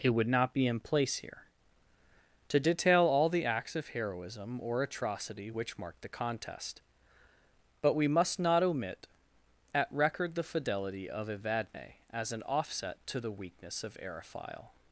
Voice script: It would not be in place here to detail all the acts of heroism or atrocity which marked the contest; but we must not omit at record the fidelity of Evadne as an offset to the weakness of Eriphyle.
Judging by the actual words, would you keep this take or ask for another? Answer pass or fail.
pass